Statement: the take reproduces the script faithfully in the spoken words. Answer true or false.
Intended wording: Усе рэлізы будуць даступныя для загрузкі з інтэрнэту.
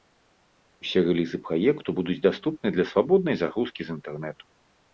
false